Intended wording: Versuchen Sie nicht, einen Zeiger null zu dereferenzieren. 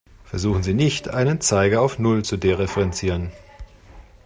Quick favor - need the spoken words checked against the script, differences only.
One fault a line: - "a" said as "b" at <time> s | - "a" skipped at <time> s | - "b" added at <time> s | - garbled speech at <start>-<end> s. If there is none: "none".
- "auf" added at 1.8 s